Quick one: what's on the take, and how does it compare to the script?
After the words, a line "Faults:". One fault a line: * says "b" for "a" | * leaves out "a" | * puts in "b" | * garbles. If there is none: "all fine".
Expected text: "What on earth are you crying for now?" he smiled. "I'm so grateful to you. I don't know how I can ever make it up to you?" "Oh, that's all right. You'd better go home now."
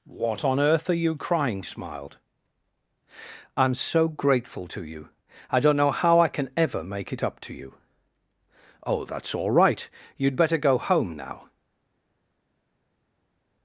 "What on earth are you crying smiled. "I'm so grateful to you. I don't know how I can ever make it up to you?" "Oh, that's all right. You'd better go home now."
Faults:
* leaves out "for now he"